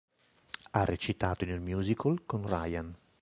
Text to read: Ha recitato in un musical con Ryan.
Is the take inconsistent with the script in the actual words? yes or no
no